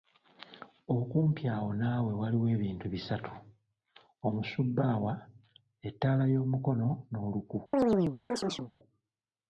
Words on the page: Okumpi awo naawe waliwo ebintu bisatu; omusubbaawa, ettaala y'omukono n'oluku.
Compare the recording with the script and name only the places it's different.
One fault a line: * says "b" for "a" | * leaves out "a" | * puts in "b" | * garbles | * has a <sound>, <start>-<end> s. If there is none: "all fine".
* has a chirp, 7.7-8.7 s